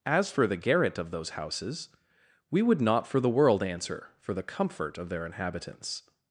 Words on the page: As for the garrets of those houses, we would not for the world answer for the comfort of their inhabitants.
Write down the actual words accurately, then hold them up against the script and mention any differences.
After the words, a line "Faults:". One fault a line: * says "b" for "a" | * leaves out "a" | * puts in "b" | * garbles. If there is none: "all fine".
As for the garret of those houses, we would not for the world answer for the comfort of their inhabitants.
Faults:
* says "garret" for "garrets"